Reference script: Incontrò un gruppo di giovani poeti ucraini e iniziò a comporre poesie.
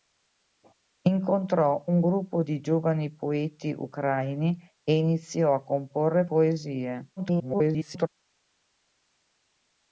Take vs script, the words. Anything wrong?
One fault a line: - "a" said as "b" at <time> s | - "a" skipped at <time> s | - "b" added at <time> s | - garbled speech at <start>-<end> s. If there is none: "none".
- garbled speech at 7.2-8.1 s